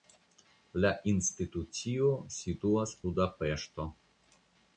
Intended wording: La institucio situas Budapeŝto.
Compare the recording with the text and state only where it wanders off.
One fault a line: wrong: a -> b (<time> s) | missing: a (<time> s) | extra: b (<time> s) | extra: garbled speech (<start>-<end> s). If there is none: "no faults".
no faults